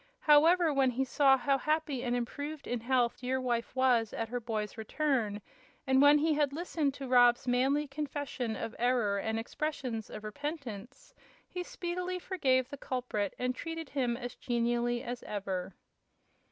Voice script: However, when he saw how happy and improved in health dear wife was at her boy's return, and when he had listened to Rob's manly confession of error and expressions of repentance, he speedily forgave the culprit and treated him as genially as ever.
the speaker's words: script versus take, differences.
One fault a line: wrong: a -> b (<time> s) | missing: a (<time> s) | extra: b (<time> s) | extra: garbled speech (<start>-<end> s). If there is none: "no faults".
no faults